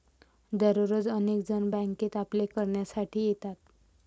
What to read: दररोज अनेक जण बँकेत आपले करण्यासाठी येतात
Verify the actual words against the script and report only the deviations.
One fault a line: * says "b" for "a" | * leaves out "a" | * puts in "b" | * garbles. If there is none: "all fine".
all fine